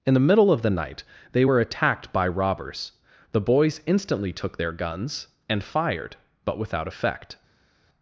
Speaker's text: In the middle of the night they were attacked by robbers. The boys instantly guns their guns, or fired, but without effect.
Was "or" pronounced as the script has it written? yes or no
no